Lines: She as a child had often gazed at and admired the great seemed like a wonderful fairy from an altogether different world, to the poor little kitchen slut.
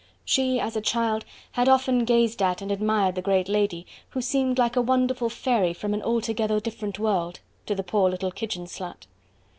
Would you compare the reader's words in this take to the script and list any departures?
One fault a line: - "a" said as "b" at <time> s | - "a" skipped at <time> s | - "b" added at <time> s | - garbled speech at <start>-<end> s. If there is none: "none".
- "lady who" added at 3.5 s